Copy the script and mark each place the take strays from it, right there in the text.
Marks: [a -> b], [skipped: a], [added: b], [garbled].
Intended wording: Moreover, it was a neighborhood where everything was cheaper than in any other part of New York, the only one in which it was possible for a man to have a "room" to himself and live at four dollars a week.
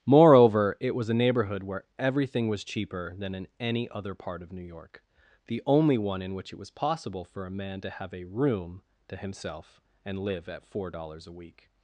Moreover, it was a neighborhood where everything was cheaper than in any other part of New York, the only one in which it was possible for a man to have a "room" to himself and live at four dollars a week.